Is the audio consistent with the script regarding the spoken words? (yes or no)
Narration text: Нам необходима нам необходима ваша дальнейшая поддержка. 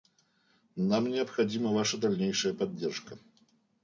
no